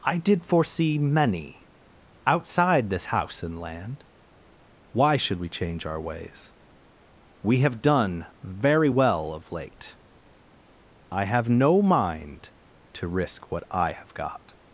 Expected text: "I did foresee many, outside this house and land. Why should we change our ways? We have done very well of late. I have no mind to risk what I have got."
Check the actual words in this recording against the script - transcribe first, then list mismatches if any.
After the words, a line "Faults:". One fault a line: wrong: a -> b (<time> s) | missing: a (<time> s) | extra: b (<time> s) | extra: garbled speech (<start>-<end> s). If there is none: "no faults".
"I did foresee many, outside this house and land. Why should we change our ways? We have done very well of late. I have no mind to risk what I have got."
Faults:
no faults